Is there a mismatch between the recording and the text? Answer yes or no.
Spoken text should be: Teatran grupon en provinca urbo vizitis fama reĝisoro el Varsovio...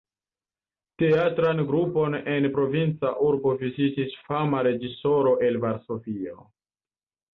no